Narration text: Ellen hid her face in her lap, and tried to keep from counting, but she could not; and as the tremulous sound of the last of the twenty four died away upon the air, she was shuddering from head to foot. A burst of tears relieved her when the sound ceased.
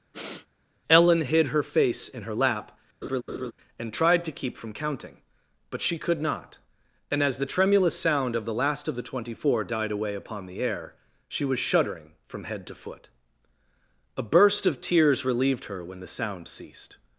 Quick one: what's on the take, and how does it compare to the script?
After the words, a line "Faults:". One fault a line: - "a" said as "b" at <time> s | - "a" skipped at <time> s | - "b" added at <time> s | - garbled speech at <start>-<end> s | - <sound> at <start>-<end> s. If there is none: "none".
Ellen hid her face in her lap, and tried to keep from counting, but she could not; and as the tremulous sound of the last of the twenty four died away upon the air, she was shuddering from head to foot. A burst of tears relieved her when the sound ceased.
Faults:
- sniff at 0.1-0.5 s
- laugh at 3.0-3.5 s